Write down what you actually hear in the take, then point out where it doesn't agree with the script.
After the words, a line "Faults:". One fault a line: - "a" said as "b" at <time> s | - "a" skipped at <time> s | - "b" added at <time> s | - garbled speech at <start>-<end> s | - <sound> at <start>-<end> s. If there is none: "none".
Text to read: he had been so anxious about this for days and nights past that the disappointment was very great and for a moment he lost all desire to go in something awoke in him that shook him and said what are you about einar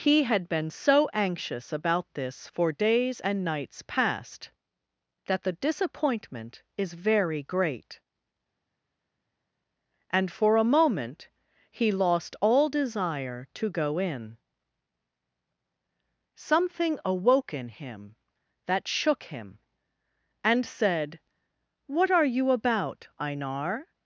he had been so anxious about this for days and nights past that the disappointment is very great and for a moment he lost all desire to go in something awoke in him that shook him and said what are you about einar
Faults:
- "was" said as "is" at 6.8 s